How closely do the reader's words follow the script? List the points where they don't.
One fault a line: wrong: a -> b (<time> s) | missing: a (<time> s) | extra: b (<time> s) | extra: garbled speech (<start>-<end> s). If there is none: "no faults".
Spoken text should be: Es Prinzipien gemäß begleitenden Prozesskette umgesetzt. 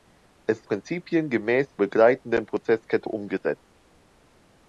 no faults